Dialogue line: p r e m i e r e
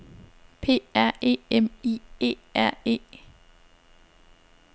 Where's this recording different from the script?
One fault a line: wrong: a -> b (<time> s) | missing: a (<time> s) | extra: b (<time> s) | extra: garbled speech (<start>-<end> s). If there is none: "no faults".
no faults